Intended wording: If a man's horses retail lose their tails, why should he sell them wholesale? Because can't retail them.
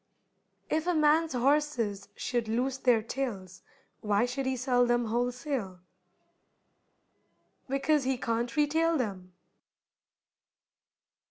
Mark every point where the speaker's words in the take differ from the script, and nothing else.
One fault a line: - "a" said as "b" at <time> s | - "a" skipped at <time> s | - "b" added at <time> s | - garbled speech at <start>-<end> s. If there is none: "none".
- "retail" said as "should" at 2.1 s
- "he" added at 8.0 s